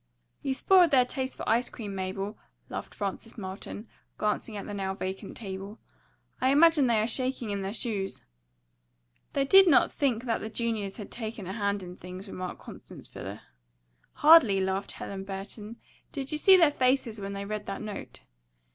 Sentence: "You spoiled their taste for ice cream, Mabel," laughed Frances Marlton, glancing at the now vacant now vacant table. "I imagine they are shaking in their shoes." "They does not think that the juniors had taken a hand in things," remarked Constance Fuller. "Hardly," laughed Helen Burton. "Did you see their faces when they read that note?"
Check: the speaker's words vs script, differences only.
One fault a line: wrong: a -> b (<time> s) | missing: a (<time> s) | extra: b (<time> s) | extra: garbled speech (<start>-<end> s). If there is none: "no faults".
missing: now vacant (5.4 s)
wrong: does -> did (9.4 s)